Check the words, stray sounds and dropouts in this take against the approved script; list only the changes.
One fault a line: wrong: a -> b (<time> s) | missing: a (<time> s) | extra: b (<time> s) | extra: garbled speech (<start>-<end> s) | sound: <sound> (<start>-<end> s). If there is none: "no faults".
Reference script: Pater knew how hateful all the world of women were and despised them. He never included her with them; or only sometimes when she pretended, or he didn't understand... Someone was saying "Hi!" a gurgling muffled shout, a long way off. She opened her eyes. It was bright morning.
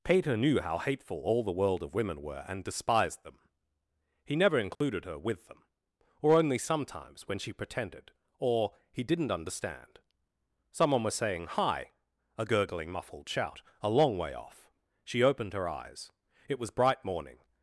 sound: dropout (4.8-4.8 s)